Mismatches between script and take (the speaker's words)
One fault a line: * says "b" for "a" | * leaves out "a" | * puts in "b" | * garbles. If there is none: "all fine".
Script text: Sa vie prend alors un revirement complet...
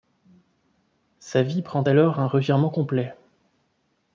all fine